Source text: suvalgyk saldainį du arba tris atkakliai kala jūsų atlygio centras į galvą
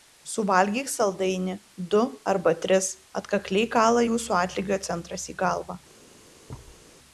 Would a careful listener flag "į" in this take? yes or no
no